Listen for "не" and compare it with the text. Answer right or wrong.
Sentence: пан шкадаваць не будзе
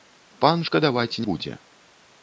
wrong